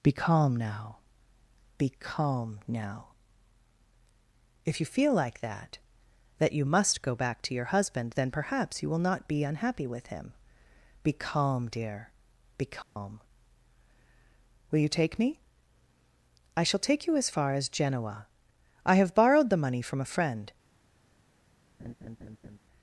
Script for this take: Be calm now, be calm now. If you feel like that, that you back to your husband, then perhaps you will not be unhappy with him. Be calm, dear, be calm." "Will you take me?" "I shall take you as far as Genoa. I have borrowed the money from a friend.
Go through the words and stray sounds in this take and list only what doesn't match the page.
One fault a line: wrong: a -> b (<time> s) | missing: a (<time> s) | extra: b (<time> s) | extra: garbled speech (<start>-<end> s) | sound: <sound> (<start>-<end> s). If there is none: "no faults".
extra: must go (6.6 s)
sound: dropout (12.8-13.0 s)
sound: laugh (21.8-22.6 s)